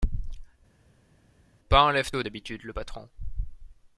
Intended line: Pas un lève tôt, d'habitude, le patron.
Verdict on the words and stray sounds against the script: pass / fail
pass